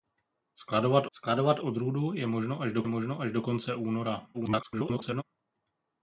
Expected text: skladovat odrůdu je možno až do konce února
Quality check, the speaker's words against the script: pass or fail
fail